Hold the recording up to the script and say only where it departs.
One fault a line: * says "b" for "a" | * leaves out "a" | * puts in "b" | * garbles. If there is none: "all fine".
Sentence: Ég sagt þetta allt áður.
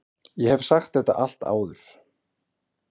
* puts in "hef"